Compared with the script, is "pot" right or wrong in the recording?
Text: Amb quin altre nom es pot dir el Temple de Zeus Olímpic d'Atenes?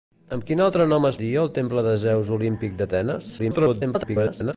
wrong